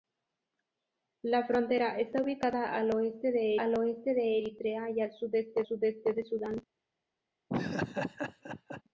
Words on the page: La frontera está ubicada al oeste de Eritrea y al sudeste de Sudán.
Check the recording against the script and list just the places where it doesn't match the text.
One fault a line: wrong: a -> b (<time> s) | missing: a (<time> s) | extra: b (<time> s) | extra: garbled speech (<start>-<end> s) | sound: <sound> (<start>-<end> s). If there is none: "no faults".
extra: al oeste de (3.6 s)
extra: sudeste (5.6 s)
sound: laugh (7.5-8.8 s)